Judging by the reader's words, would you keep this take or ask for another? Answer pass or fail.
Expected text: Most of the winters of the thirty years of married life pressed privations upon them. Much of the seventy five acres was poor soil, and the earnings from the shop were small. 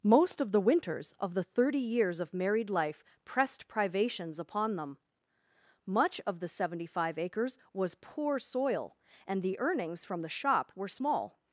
pass